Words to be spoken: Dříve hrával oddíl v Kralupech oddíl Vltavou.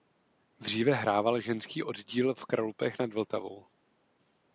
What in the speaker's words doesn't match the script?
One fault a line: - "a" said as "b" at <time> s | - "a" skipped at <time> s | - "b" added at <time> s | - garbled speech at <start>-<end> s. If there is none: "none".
- "ženský" added at 1.4 s
- "oddíl" said as "nad" at 3.0 s